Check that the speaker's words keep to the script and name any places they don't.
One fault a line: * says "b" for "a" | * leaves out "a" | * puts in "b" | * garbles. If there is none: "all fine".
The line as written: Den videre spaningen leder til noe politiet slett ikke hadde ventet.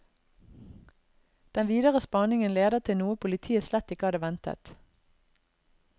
all fine